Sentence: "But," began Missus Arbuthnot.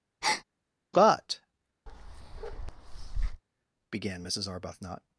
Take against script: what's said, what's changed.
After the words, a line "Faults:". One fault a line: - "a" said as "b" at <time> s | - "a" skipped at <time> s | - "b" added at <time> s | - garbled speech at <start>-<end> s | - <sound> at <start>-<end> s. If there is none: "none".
"But," began Missus Arbuthnot.
Faults:
- breath at 0.2-0.4 s
- bark at 1.9-3.4 s